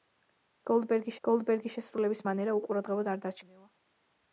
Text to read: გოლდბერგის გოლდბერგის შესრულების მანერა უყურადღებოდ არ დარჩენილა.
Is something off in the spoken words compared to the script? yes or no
no